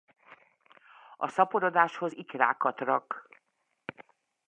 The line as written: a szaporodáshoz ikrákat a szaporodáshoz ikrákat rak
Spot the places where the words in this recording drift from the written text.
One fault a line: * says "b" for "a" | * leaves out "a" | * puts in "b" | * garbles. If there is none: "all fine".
* leaves out "a szaporodáshoz ikrákat"